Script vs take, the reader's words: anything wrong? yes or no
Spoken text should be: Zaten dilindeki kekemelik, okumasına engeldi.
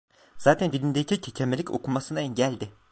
no